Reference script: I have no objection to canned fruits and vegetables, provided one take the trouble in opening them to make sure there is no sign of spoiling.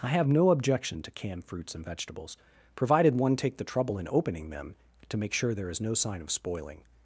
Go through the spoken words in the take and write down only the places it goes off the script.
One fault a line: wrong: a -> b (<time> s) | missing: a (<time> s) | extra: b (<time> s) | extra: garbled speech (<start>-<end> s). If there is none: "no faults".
no faults